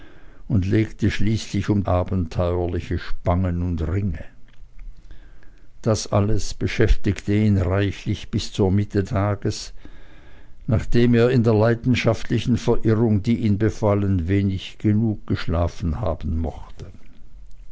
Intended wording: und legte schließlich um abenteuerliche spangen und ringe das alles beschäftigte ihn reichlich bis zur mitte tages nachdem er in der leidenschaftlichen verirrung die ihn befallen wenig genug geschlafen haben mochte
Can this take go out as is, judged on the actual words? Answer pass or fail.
pass